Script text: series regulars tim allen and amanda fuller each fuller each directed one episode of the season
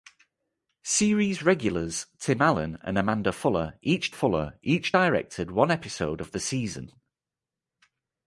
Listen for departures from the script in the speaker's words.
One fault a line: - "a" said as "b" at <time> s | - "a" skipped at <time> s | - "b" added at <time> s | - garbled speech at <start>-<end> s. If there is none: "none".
none